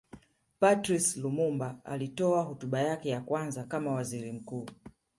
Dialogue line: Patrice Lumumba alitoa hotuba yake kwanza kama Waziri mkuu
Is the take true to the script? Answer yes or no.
no